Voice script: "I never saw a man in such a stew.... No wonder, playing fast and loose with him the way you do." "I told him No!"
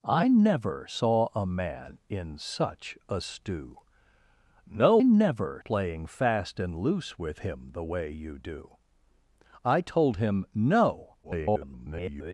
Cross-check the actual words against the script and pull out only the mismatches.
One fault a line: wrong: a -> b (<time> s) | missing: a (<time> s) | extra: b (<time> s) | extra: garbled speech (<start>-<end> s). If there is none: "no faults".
wrong: wonder -> never (5.0 s)
extra: garbled speech (11.2-12.3 s)